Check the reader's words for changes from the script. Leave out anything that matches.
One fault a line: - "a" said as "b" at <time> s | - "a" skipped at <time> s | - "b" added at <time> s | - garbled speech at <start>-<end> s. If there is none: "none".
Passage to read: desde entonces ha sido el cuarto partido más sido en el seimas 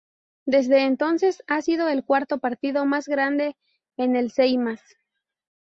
- "sido" said as "grande" at 3.1 s